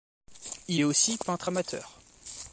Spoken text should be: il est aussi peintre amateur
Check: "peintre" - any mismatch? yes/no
no